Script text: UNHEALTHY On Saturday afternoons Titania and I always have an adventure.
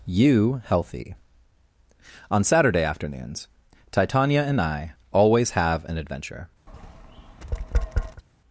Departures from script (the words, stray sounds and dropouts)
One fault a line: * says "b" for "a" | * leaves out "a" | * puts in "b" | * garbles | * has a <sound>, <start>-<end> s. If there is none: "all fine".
* says "You healthy" for "UNHEALTHY"
* has a tap, 6.7-8.2 s